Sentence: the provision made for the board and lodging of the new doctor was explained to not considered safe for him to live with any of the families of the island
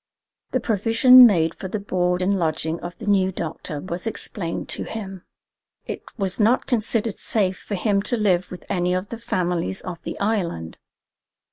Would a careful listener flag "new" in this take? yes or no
no